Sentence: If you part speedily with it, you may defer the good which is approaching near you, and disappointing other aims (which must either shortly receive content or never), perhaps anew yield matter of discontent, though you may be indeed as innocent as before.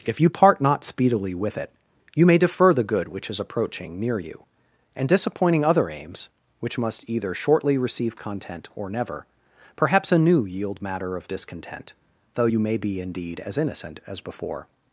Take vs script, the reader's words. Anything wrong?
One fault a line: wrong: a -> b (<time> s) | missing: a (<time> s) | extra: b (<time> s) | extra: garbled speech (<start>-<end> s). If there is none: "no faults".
extra: not (0.6 s)